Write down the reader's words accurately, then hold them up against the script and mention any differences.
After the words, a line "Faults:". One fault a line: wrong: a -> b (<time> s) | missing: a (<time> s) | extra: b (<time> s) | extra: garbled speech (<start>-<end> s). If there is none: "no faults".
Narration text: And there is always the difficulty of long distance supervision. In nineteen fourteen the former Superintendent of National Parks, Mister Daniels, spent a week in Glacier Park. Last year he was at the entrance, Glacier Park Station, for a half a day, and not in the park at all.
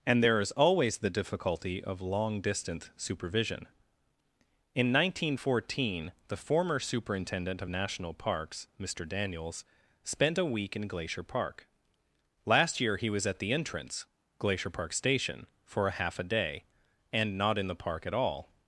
And there is always the difficulty of long distance supervision. In nineteen fourteen the former Superintendent of National Parks, Mister Daniels, spent a week in Glacier Park. Last year he was at the entrance, Glacier Park Station, for a half a day, and not in the park at all.
Faults:
no faults